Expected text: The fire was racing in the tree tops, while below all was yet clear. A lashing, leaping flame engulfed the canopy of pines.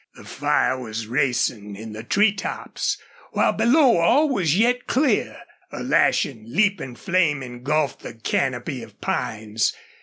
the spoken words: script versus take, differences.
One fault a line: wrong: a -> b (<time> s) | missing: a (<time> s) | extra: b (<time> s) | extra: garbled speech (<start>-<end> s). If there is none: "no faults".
no faults